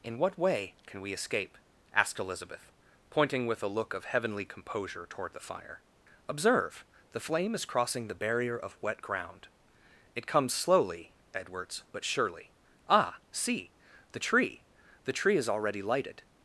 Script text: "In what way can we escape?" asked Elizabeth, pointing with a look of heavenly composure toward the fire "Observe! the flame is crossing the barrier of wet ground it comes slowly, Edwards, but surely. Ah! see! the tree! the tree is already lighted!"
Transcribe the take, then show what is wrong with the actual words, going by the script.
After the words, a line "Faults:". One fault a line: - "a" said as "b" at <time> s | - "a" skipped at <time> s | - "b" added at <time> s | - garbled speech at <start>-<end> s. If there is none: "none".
"In what way can we escape?" asked Elizabeth, pointing with a look of heavenly composure toward the fire "Observe! the flame is crossing the barrier of wet ground it comes slowly, Edwards, but surely. Ah! see! the tree! the tree is already lighted!"
Faults:
none